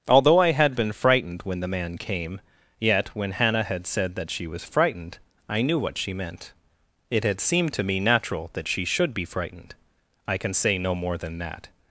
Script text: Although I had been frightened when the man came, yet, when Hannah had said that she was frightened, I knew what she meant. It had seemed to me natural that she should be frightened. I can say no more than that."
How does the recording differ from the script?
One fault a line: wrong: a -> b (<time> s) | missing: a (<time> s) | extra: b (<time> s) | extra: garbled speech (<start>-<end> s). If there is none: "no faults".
no faults